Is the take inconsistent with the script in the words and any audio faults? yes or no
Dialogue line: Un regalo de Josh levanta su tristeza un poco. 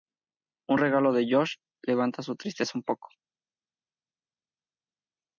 no